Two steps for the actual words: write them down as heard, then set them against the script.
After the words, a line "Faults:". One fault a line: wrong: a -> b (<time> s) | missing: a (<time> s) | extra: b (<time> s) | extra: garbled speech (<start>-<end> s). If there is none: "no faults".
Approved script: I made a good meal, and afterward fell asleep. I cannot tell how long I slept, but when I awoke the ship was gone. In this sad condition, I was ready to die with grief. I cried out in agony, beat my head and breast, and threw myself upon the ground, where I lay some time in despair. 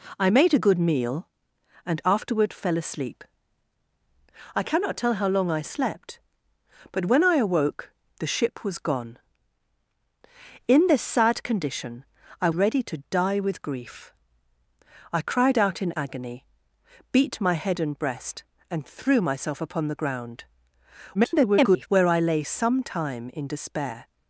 I made a good meal, and afterward fell asleep. I cannot tell how long I slept, but when I awoke the ship was gone. In this sad condition, I ready to die with grief. I cried out in agony, beat my head and breast, and threw myself upon the ground, [garbled] where I lay some time in despair.
Faults:
missing: was (12.5 s)
extra: garbled speech (21.1-21.9 s)